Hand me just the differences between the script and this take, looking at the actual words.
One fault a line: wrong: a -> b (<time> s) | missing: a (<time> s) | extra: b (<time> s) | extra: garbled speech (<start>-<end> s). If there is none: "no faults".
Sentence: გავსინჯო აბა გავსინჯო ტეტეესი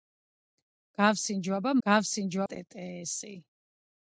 no faults